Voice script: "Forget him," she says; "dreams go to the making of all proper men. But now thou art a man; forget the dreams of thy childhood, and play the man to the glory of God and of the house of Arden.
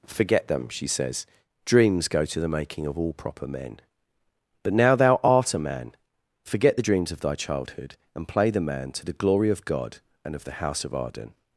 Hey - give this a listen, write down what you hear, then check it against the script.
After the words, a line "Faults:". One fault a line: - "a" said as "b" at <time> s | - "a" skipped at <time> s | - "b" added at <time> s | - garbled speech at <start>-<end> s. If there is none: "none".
"Forget them," she says; "dreams go to the making of all proper men. But now thou art a man; forget the dreams of thy childhood, and play the man to the glory of God and of the house of Arden.
Faults:
- "him" said as "them" at 0.5 s